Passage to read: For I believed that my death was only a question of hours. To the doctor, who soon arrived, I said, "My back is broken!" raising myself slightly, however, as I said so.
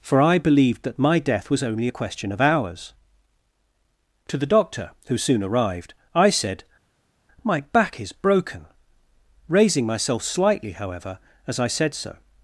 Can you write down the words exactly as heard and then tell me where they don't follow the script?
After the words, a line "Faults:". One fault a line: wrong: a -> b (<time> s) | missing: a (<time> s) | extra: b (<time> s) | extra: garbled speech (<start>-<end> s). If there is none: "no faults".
For I believed that my death was only a question of hours. To the doctor, who soon arrived, I said, "My back is broken!" raising myself slightly, however, as I said so.
Faults:
no faults